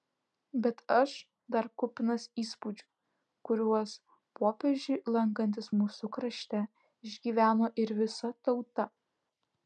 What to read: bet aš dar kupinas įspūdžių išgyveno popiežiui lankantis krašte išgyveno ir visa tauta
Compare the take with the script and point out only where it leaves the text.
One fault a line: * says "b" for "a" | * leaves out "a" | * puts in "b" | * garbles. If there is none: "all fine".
* says "kuriuos" for "išgyveno"
* puts in "mūsų"